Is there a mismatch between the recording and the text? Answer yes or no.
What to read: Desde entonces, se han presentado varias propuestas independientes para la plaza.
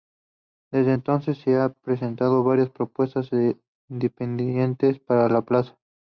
no